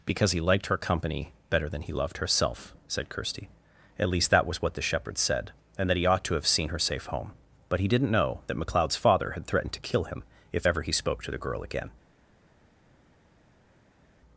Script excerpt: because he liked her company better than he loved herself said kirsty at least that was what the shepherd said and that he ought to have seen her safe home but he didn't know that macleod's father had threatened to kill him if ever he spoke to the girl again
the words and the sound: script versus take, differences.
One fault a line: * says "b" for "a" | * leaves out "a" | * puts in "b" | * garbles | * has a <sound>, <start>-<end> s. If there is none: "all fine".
all fine